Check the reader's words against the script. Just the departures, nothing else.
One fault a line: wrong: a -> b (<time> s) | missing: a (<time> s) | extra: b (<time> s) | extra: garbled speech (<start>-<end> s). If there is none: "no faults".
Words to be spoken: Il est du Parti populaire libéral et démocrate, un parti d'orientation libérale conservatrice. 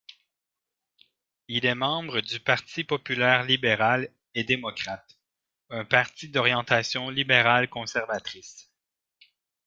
extra: membre (1.8 s)